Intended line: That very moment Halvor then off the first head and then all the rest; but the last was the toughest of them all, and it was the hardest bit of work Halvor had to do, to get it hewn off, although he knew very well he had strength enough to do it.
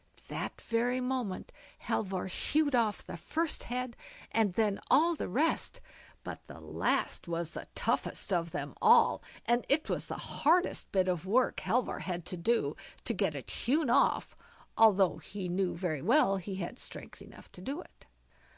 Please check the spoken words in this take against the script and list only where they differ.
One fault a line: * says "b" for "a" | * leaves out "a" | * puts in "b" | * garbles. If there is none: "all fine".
* says "hewed" for "then"